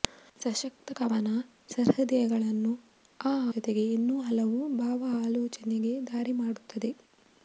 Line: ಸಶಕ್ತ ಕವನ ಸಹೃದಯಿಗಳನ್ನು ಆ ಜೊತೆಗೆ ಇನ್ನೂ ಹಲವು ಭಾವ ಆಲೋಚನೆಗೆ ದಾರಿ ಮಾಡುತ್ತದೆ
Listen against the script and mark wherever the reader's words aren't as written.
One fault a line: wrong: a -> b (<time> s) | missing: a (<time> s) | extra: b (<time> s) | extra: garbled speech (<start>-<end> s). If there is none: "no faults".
no faults